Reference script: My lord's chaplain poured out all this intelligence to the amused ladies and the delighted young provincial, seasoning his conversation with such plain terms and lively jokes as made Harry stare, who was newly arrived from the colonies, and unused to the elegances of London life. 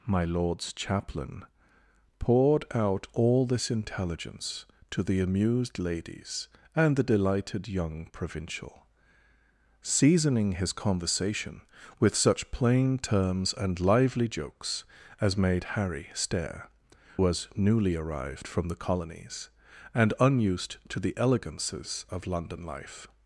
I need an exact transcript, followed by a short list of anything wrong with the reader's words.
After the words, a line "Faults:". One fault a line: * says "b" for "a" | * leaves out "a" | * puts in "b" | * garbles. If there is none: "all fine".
My lord's chaplain poured out all this intelligence to the amused ladies and the delighted young provincial, seasoning his conversation with such plain terms and lively jokes as made Harry stare, was newly arrived from the colonies, and unused to the elegances of London life.
Faults:
* leaves out "who"